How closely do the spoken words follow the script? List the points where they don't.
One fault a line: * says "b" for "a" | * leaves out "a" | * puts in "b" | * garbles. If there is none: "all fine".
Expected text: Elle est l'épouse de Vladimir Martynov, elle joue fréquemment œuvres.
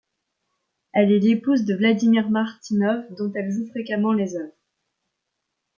* puts in "dont"
* puts in "les"